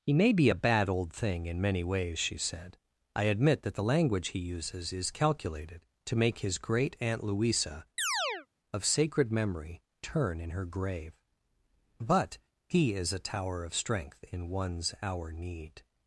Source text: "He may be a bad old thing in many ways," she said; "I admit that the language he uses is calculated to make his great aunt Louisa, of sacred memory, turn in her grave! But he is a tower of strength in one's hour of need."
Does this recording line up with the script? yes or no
no